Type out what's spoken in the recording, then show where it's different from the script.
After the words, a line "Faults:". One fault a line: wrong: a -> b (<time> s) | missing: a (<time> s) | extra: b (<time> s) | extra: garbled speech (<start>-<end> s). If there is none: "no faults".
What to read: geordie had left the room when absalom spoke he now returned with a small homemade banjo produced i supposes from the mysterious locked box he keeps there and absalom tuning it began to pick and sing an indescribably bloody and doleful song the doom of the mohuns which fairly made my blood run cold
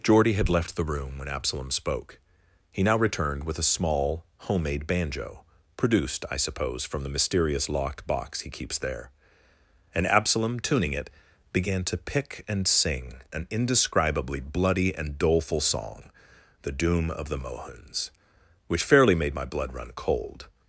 geordie had left the room when absalom spoke he now returned with a small homemade banjo produced i suppose from the mysterious locked box he keeps there and absalom tuning it began to pick and sing an indescribably bloody and doleful song the doom of the mohuns which fairly made my blood run cold
Faults:
wrong: supposes -> suppose (6.4 s)